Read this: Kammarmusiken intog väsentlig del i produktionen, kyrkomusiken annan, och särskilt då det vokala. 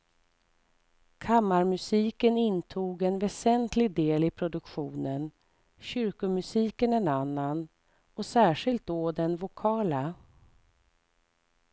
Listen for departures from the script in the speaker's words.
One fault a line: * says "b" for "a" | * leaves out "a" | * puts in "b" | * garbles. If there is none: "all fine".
* puts in "en"
* puts in "en"
* says "den" for "det"